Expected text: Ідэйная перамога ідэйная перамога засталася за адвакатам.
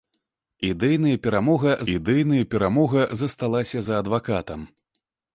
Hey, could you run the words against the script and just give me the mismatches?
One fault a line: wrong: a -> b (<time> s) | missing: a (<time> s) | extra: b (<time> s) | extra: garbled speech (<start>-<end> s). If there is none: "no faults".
no faults